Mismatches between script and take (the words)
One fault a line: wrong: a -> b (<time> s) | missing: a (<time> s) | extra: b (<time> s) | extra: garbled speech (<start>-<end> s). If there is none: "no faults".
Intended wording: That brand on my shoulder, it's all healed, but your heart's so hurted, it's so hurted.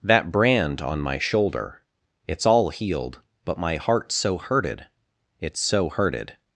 wrong: your -> my (3.6 s)